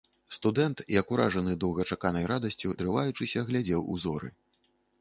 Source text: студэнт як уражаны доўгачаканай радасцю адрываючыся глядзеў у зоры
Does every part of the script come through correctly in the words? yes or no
yes